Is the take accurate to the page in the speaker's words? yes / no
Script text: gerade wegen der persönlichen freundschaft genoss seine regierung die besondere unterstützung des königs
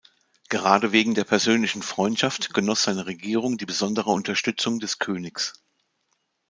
yes